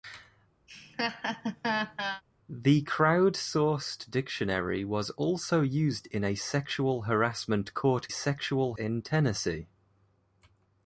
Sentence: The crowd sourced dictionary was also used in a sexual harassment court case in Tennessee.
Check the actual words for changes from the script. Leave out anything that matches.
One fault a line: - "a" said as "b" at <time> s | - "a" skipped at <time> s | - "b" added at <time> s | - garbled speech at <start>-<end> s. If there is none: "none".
- "case" said as "sexual" at 8.1 s